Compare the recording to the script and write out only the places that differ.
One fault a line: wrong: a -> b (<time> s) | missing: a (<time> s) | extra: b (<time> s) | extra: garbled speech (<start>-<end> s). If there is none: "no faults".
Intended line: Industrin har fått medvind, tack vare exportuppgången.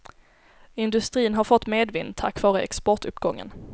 no faults